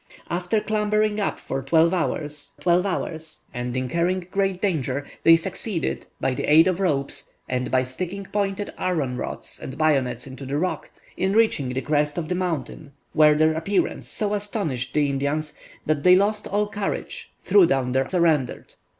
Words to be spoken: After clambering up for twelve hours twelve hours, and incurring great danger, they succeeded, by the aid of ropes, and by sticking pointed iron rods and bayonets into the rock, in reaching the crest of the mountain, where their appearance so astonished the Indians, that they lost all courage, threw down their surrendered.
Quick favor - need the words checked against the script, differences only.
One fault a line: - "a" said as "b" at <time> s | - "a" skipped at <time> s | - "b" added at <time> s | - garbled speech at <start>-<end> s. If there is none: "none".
none